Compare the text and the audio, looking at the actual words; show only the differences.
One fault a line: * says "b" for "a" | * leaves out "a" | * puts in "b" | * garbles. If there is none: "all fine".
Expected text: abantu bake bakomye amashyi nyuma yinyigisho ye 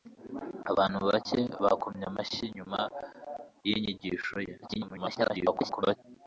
* garbles